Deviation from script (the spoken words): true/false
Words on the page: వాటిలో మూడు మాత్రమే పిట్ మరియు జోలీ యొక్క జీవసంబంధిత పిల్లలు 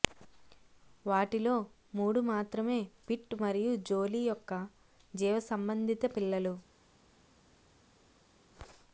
false